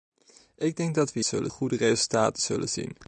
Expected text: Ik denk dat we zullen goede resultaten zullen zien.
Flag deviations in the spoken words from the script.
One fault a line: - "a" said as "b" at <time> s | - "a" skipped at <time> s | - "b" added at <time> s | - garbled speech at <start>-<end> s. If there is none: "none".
none